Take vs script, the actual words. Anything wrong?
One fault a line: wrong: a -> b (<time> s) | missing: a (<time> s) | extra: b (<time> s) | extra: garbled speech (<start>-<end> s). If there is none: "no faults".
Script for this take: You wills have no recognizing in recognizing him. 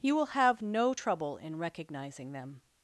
wrong: wills -> will (0.1 s)
wrong: recognizing -> trouble (0.9 s)
wrong: him -> them (2.3 s)